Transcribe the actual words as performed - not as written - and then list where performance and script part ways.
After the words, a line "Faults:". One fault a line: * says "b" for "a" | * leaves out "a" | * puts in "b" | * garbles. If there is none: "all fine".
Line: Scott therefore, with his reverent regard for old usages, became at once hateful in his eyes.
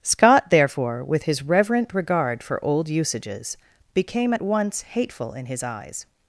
Scott therefore, with his reverent regard for old usages, became at once hateful in his eyes.
Faults:
all fine